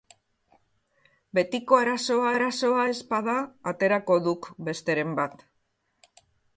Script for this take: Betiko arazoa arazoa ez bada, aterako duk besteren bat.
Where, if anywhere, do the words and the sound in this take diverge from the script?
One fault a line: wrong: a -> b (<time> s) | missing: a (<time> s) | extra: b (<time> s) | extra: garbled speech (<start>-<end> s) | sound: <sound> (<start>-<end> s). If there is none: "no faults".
no faults